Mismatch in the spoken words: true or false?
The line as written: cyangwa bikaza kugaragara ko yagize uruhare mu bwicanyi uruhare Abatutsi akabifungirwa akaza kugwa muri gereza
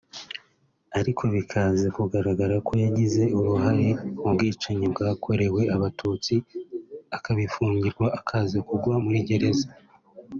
true